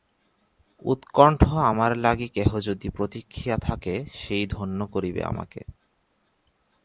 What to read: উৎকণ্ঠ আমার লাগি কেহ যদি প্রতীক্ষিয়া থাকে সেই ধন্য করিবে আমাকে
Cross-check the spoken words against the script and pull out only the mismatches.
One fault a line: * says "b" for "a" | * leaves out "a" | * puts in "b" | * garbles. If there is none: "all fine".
all fine